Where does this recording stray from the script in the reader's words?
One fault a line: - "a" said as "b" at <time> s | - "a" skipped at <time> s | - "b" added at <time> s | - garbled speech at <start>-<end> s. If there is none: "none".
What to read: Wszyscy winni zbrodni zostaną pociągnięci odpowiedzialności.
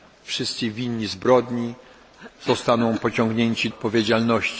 none